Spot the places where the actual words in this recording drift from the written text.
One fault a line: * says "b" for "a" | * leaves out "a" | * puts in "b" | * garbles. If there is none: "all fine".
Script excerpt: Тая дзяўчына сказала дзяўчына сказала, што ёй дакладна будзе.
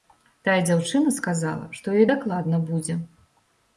* leaves out "дзяўчына сказала"